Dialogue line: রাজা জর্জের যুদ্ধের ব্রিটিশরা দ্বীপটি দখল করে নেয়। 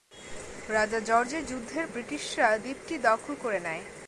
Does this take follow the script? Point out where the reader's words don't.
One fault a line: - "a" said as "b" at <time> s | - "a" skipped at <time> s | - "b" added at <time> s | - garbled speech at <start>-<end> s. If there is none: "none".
none